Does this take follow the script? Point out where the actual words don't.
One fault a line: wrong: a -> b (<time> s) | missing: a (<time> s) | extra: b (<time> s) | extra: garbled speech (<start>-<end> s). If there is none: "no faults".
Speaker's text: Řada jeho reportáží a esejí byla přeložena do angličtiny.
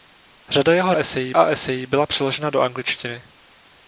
wrong: reportáží -> esejí (0.9 s)